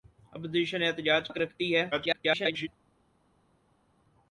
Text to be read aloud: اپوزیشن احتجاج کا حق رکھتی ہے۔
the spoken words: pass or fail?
fail